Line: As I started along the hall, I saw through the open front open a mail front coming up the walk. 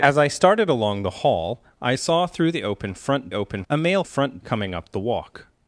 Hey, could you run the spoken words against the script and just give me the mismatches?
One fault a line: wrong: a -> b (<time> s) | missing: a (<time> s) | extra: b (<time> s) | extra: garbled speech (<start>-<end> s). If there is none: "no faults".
no faults